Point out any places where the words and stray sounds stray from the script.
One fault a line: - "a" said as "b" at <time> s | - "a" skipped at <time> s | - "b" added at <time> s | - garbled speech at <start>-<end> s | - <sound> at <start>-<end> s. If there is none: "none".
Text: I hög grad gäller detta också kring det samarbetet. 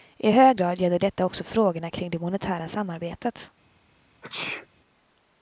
- "frågorna" added at 1.4 s
- "monetära" added at 2.2 s
- sneeze at 4.2-4.7 s